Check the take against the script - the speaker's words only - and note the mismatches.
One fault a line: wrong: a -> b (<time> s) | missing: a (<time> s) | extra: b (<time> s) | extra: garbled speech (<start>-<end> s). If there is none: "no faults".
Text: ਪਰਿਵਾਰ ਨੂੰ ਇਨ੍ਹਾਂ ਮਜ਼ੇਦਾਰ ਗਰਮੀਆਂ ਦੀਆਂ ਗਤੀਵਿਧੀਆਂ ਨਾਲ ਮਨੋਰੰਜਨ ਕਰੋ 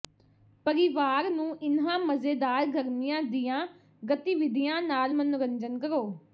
no faults